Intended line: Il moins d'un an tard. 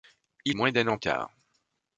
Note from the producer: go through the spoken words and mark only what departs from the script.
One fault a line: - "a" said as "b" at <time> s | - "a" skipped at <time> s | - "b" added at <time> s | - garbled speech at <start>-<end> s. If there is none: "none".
none